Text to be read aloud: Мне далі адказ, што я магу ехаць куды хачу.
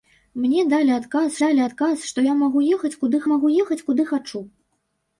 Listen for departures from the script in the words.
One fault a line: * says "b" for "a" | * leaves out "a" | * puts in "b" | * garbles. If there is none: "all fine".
* puts in "далі адказ"
* puts in "магу ехаць куды"